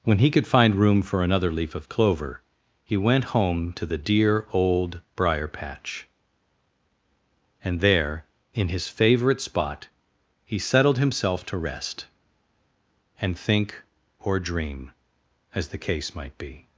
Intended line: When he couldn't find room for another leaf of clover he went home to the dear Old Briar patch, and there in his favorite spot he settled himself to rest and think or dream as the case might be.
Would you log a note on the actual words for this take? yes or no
yes